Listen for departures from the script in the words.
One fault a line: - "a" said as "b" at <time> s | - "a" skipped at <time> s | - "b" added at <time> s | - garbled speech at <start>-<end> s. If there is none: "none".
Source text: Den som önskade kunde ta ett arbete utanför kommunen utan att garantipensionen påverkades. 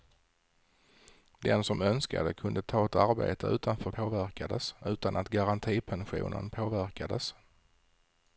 - "kommunen" said as "påverkades" at 3.9 s